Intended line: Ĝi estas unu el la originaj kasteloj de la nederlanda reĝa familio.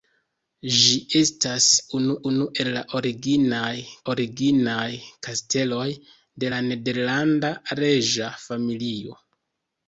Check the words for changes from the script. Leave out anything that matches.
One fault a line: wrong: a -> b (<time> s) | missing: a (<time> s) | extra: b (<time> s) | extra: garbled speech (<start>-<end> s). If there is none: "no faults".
extra: unu (2.3 s)
extra: originaj (4.1 s)